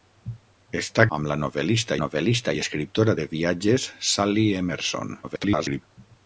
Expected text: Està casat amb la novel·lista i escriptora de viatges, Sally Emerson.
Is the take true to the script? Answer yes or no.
no